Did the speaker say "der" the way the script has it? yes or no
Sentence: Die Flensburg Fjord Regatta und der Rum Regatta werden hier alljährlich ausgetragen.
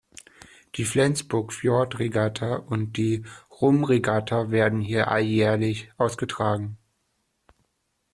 no